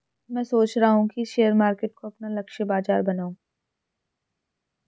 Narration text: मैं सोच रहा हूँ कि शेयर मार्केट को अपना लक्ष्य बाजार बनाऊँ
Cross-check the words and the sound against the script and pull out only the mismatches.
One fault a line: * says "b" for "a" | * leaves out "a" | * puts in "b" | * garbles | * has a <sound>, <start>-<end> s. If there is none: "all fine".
all fine